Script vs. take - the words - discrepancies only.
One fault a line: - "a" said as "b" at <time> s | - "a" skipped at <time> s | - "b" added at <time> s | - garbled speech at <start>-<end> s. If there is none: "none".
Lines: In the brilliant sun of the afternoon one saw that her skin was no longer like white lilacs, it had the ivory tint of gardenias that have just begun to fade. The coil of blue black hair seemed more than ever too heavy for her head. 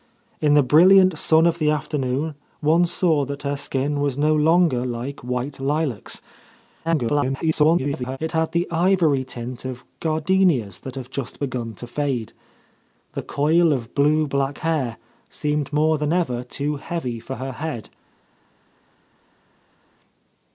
- garbled speech at 6.8-8.2 s